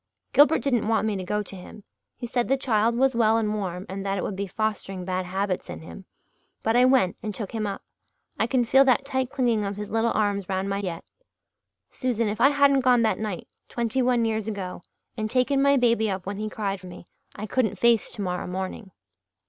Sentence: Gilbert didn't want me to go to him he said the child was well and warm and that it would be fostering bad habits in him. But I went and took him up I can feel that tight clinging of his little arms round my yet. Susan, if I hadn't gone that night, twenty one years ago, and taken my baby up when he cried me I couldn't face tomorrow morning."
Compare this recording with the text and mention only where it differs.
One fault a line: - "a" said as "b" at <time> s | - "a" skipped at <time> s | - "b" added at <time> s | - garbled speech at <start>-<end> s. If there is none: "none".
none